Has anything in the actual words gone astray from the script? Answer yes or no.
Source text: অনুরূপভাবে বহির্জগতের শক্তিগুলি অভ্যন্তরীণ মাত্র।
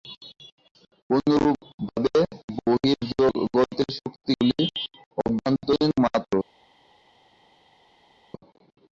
no